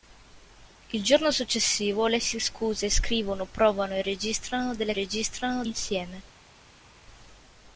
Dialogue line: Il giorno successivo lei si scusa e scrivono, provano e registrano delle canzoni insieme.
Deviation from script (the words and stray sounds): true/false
true